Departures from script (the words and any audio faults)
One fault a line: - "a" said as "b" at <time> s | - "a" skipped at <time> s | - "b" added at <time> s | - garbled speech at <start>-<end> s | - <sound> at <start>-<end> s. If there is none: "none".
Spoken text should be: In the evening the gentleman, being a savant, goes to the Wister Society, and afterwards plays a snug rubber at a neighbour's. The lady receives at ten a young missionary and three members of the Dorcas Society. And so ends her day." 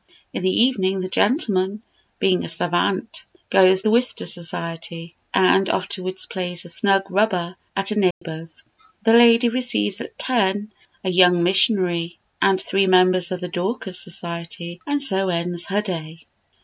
- "to" skipped at 3.8 s
- dropout at 8.1-8.2 s